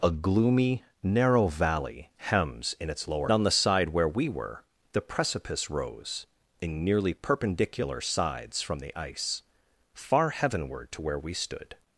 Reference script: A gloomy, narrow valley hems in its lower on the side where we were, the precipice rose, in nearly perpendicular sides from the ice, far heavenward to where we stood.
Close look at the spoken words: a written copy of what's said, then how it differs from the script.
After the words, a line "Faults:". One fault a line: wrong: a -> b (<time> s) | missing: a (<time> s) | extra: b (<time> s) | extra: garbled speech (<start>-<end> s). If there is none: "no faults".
A gloomy, narrow valley hems in its lower on the side where we were, the precipice rose, in nearly perpendicular sides from the ice, far heavenward to where we stood.
Faults:
no faults